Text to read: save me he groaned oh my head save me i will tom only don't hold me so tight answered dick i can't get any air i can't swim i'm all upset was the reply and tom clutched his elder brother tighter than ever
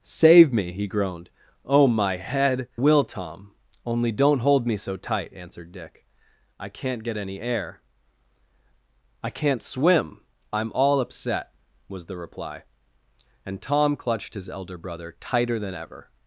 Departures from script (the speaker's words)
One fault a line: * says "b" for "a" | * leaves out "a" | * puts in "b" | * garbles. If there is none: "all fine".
* leaves out "save me i"